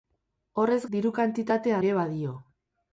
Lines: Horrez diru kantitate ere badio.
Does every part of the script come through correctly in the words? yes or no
yes